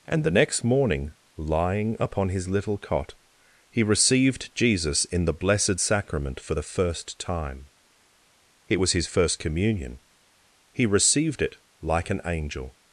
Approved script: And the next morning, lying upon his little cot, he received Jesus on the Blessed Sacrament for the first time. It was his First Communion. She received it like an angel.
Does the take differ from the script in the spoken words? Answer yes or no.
yes